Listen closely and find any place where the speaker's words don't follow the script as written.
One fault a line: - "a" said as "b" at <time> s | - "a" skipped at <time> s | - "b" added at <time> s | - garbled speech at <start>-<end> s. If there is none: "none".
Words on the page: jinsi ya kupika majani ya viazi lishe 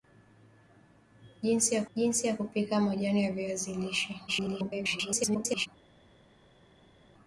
- "jinsi ya" added at 1.9 s
- garbled speech at 4.3-5.7 s